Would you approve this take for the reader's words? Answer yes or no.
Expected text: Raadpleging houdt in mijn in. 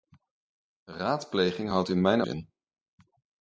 yes